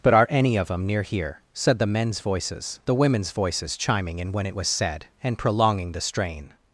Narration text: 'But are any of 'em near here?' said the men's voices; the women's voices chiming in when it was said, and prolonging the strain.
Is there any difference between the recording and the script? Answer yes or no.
no